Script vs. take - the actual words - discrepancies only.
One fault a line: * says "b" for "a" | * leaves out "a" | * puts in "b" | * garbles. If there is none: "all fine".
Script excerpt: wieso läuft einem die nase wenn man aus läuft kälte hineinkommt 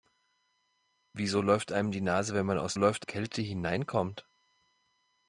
all fine